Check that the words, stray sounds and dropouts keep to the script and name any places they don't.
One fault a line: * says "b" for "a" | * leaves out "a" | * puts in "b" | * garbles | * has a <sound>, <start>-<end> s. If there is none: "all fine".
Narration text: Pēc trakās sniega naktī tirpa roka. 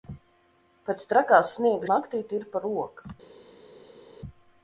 all fine